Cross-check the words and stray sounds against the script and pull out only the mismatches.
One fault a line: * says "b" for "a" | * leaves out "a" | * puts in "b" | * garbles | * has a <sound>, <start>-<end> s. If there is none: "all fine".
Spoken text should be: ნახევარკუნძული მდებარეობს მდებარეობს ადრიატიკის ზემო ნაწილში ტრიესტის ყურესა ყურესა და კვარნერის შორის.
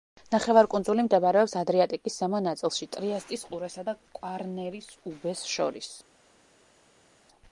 * leaves out "მდებარეობს"
* leaves out "ყურესა"
* puts in "უბეს"